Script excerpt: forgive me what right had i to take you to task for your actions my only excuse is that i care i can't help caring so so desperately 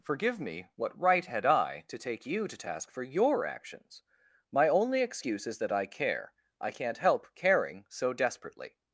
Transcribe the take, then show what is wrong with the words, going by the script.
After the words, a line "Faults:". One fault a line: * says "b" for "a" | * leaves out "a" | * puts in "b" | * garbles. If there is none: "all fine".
forgive me what right had i to take you to task for your actions my only excuse is that i care i can't help caring so desperately
Faults:
* leaves out "so"